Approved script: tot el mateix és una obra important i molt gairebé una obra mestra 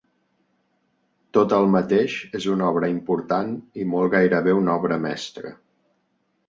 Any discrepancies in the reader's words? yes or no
no